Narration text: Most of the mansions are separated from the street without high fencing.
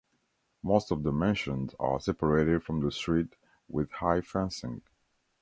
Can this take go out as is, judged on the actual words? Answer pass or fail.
fail